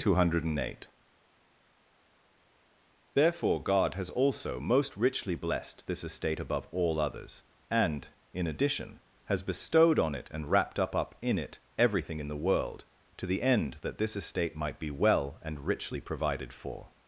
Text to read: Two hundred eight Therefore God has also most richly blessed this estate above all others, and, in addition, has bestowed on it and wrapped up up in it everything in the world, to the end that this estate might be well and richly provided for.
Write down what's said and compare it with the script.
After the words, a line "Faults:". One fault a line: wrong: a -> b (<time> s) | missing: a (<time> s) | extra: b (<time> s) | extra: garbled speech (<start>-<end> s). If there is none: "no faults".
Two hundred eight Therefore God has also most richly blessed this estate above all others, and, in addition, has bestowed on it and wrapped up up in it everything in the world, to the end that this estate might be well and richly provided for.
Faults:
no faults